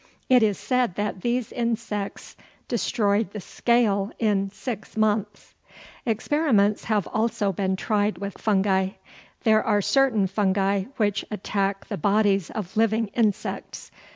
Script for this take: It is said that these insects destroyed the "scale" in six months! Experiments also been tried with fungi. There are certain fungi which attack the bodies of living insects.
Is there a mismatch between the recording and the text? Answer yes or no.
yes